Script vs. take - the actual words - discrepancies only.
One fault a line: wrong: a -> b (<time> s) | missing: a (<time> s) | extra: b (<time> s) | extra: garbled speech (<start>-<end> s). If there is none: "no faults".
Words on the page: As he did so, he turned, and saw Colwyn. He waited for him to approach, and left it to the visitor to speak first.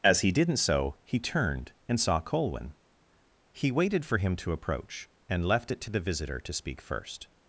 wrong: did -> didn't (0.3 s)